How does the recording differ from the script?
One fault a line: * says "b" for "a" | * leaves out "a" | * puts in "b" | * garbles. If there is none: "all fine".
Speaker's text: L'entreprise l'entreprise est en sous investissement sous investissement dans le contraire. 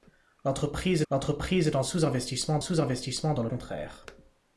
all fine